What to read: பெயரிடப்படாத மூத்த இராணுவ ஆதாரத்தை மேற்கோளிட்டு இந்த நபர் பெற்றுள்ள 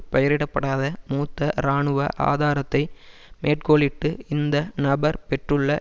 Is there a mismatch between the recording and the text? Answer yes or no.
no